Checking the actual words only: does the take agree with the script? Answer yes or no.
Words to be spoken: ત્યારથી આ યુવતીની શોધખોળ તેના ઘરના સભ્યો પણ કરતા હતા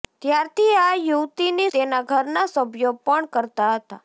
no